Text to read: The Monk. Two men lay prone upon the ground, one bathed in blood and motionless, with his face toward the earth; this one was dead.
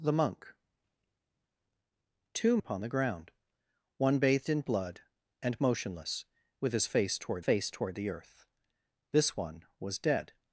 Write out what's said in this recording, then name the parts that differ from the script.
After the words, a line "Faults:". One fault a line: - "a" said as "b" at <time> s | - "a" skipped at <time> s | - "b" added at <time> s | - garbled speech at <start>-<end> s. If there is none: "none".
The Monk. Two upon the ground, one bathed in blood and motionless, with his face toward face toward the earth; this one was dead.
Faults:
- "men lay prone" skipped at 2.6 s
- "face toward" added at 7.4 s